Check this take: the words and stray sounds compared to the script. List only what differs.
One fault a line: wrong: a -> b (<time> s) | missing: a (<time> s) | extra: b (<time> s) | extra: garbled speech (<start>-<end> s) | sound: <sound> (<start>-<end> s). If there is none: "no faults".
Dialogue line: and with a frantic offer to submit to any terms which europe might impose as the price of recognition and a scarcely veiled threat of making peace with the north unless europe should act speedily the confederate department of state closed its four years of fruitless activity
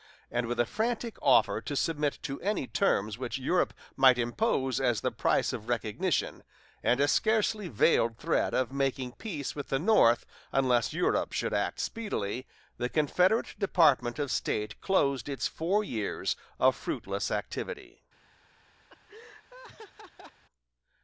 sound: laugh (18.9-20.4 s)